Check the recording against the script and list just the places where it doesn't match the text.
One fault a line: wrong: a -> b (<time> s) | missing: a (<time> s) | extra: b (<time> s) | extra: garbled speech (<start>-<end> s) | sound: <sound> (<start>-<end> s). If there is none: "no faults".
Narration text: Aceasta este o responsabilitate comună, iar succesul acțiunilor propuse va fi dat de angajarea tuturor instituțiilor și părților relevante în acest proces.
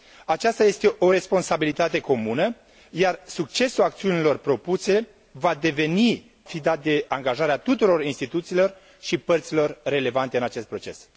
no faults